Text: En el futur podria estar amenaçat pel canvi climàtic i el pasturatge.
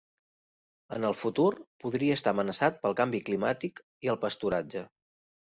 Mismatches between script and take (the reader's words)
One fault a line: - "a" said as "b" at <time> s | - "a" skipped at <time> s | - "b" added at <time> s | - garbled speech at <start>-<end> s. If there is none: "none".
none